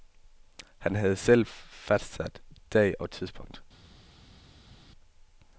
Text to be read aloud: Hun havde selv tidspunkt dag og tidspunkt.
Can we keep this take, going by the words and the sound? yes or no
no